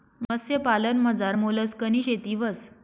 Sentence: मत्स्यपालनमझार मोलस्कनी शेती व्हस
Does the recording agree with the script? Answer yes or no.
yes